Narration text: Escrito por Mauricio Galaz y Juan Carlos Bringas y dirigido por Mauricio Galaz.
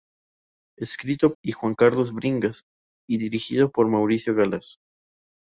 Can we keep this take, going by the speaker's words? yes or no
no